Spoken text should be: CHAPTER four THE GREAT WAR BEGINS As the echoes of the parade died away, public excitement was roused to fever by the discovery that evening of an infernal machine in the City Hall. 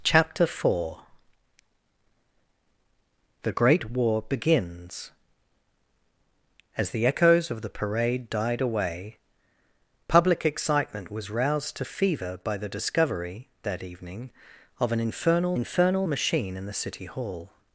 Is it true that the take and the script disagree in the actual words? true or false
true